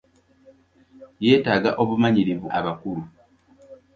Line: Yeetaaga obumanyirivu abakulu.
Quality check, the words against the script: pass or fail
pass